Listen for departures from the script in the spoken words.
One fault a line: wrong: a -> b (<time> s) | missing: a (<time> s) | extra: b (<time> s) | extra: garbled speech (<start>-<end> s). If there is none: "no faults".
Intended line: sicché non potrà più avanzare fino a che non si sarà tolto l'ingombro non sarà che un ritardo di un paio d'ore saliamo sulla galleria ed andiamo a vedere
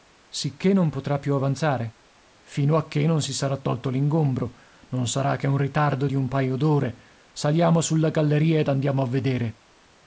no faults